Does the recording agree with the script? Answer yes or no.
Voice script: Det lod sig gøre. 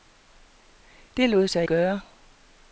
yes